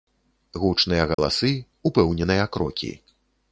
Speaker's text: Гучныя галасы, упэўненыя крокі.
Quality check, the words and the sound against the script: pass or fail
fail